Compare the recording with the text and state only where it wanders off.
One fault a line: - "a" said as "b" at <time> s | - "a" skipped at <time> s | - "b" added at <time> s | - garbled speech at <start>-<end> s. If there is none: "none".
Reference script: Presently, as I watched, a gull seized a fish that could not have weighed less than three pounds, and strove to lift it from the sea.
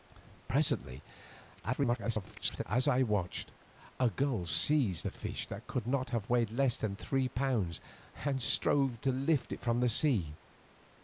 - garbled speech at 1.6-2.6 s